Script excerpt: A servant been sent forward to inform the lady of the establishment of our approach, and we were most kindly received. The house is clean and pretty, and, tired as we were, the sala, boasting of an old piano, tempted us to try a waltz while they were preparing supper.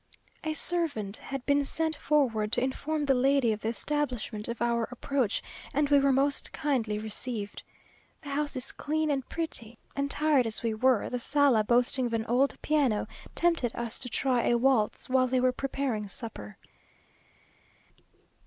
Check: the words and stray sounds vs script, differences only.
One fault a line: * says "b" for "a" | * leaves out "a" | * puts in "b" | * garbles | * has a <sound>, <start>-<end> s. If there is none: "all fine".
* puts in "had"